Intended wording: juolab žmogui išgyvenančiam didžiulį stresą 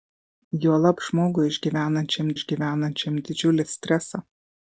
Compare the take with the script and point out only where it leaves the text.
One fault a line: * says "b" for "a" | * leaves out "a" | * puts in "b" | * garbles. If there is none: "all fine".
* puts in "išgyvenančiam"